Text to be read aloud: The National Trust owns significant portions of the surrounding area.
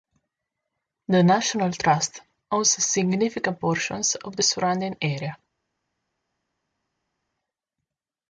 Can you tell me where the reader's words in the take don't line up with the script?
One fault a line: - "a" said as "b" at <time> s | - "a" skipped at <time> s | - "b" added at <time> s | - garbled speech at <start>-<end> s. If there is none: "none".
none